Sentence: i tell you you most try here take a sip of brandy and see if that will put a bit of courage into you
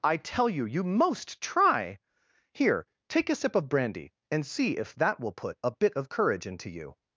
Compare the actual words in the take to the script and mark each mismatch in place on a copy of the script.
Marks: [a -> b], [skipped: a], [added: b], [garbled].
i tell you you most try here take a sip of brandy and see if that will put a bit of courage into you